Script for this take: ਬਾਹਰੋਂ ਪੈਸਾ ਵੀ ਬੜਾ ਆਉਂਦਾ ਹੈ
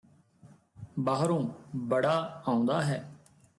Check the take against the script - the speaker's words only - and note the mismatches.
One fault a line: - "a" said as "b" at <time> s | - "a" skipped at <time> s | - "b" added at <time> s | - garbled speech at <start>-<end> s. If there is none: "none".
- "ਪੈਸਾ ਵੀ" skipped at 1.4 s